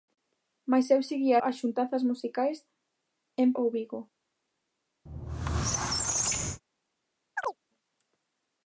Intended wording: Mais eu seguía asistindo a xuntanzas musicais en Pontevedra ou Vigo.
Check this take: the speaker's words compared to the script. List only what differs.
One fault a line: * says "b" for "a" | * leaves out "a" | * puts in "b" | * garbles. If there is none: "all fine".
* leaves out "asistindo"
* leaves out "Pontevedra"